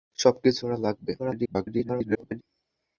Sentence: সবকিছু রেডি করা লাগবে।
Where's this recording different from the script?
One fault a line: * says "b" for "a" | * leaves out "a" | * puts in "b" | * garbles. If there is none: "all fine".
* leaves out "রেডি"
* garbles